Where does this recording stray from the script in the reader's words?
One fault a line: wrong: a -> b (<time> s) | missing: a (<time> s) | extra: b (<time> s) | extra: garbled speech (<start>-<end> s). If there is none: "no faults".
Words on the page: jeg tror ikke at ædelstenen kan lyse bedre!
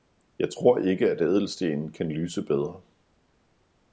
no faults